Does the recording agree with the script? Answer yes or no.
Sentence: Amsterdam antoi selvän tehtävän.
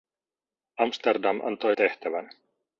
no